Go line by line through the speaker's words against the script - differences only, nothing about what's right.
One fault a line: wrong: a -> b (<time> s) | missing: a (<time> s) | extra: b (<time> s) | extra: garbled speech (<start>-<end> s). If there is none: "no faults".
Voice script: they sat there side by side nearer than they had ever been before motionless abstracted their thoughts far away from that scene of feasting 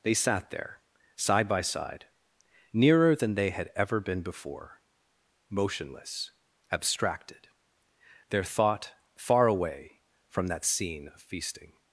wrong: thoughts -> thought (8.4 s)